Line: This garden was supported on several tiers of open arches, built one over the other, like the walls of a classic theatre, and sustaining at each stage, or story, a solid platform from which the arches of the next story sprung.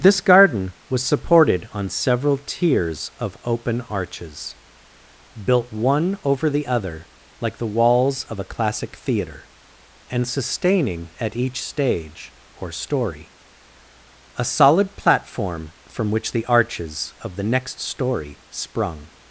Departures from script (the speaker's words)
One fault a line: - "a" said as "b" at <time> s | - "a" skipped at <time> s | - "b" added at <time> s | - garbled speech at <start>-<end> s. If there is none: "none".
none